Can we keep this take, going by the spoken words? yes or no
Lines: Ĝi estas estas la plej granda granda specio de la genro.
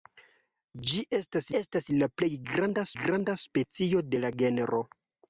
yes